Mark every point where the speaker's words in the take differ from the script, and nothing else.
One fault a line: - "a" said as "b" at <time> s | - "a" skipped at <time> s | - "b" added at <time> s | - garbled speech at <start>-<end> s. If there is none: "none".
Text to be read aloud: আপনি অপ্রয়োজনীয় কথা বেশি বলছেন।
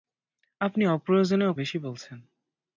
- "কথা" skipped at 1.5 s